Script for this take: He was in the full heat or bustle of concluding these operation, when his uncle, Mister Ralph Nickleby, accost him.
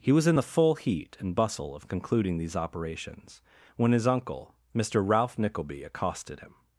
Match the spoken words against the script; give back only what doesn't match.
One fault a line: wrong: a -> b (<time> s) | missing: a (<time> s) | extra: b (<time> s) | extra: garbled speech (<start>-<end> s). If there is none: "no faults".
wrong: or -> and (1.2 s)
wrong: operation -> operations (2.6 s)
wrong: accost -> accosted (5.8 s)